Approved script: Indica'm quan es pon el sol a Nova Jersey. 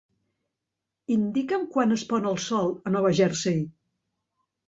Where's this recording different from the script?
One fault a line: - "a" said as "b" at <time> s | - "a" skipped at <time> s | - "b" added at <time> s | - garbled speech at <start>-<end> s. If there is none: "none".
none